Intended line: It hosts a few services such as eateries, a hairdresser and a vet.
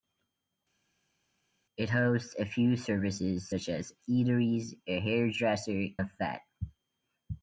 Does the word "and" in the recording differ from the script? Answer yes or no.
yes